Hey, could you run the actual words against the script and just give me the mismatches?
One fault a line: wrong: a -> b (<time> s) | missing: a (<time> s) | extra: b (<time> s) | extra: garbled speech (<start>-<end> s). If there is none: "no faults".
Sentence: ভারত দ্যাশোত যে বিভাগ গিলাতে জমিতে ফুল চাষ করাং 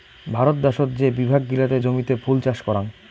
no faults